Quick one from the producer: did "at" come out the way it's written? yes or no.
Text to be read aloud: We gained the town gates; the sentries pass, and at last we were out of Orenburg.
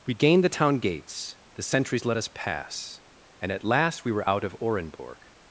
yes